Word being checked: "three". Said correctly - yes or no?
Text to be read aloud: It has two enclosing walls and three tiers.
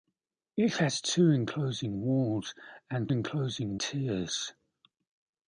no